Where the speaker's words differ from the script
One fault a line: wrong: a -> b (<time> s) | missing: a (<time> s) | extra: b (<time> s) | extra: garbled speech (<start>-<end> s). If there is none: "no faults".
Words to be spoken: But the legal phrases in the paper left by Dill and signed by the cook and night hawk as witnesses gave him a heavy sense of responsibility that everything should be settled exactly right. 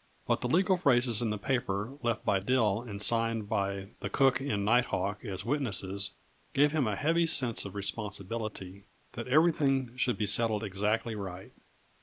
no faults